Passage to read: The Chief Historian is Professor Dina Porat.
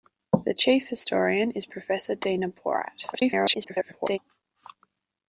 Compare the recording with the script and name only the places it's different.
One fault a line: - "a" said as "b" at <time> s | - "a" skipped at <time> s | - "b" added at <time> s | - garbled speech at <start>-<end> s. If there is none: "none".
- garbled speech at 3.1-4.2 s